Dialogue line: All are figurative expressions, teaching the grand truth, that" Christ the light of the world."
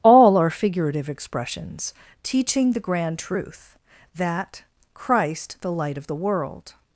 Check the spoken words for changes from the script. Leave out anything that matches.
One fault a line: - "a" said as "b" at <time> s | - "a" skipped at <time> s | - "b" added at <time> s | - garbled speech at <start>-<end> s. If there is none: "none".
none